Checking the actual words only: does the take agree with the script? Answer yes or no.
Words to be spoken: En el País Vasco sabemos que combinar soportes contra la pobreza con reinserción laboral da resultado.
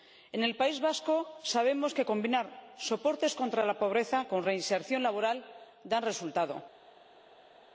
yes